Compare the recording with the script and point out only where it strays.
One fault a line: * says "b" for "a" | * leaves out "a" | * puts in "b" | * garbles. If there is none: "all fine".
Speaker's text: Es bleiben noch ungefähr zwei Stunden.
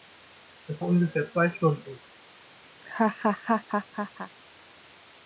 * leaves out "bleiben noch"